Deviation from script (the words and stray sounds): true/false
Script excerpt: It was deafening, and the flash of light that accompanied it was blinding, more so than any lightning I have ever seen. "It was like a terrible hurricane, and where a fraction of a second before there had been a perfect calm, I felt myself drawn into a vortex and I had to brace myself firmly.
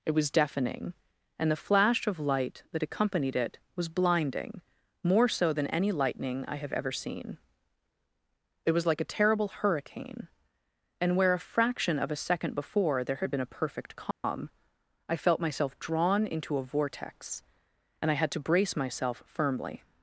true